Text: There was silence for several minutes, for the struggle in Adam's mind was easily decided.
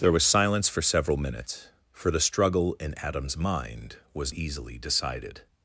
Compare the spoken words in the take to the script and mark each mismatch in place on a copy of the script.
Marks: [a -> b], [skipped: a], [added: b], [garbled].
There was silence for several minutes, for the struggle in Adam's mind was easily decided.